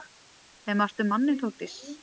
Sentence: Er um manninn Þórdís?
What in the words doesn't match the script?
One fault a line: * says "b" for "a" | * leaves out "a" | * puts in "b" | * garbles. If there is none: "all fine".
* puts in "margt"